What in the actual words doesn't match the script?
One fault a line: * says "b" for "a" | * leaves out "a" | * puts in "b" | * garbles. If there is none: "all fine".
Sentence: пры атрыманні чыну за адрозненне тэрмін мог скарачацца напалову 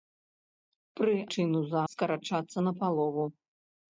* leaves out "атрыманні"
* leaves out "адрозненне тэрмін мог"